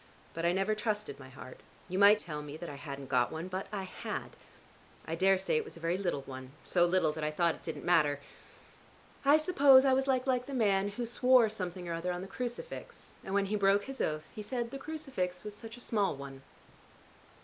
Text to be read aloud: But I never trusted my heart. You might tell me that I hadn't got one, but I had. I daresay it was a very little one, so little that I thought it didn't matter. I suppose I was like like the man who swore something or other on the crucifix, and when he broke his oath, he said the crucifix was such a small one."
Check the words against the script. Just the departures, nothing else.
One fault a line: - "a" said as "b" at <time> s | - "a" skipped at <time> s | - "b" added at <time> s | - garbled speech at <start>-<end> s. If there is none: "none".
none